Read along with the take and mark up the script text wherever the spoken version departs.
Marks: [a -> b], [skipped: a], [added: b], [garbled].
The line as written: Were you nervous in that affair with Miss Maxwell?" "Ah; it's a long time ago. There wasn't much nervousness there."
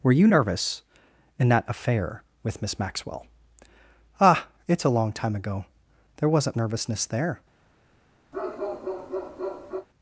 Were you nervous in that affair with Miss Maxwell?" "Ah; it's a long time ago. There wasn't [skipped: much] nervousness there."